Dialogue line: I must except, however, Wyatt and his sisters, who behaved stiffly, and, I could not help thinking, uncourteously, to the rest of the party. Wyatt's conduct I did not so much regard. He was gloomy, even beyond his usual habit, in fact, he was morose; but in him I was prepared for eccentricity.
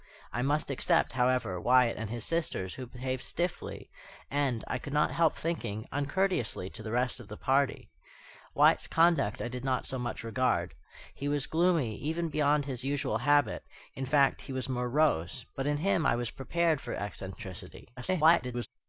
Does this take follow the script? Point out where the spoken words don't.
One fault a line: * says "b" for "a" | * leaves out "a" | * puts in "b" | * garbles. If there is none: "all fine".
* garbles